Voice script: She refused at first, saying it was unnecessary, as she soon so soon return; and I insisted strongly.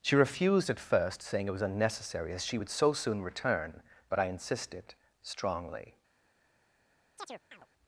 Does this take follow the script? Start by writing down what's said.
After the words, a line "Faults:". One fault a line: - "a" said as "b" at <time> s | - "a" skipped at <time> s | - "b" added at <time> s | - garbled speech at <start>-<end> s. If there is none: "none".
She refused at first, saying it was unnecessary, as she would so soon return; but I insisted strongly.
Faults:
- "soon" said as "would" at 2.6 s
- "and" said as "but" at 4.1 s